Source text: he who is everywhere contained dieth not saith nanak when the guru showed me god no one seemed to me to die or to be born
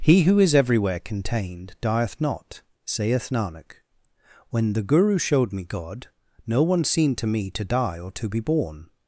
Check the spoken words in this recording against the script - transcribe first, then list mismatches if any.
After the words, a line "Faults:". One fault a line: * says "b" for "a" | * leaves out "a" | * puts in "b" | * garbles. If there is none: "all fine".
he who is everywhere contained dieth not saith nanak when the guru showed me god no one seemed to me to die or to be born
Faults:
all fine